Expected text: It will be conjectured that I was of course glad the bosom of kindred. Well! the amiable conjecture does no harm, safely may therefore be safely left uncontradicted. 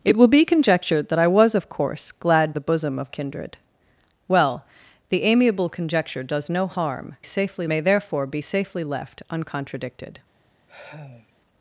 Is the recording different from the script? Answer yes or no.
no